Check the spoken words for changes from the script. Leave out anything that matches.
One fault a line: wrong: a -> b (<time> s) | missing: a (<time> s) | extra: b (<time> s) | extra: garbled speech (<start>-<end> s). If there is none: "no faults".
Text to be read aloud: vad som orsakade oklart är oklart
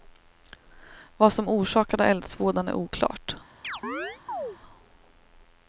wrong: oklart -> eldsvådan (2.0 s)